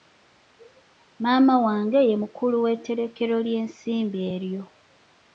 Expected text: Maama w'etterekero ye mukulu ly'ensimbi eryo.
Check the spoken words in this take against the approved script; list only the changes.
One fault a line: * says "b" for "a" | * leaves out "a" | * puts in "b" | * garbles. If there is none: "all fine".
* says "wange" for "w'etterekero"
* puts in "w'etterekero"